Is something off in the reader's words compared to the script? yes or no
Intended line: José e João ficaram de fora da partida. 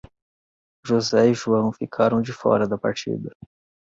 no